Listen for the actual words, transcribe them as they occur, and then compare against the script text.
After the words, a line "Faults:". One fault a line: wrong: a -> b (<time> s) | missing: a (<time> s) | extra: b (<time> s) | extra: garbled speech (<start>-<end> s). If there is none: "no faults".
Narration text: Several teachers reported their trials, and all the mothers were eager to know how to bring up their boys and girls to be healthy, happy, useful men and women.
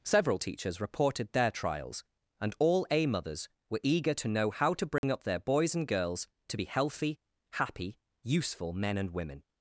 Several teachers reported their trials, and all a mothers were eager to know how to bring up their boys and girls to be healthy, happy, useful men and women.
Faults:
wrong: the -> a (2.9 s)